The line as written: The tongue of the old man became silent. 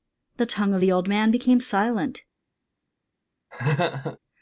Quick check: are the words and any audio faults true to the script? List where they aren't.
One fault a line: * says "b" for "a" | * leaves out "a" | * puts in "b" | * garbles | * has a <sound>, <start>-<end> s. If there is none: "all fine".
* has a laugh, 3.5-4.2 s